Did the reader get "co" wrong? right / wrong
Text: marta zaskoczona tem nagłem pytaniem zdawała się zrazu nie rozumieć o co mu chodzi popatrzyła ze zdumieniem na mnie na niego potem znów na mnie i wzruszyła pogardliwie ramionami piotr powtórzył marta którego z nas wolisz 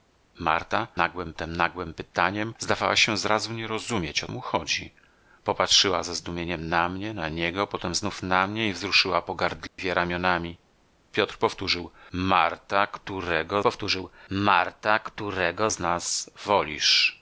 wrong